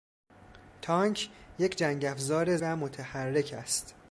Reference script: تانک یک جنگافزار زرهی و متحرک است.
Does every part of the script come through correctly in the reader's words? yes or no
no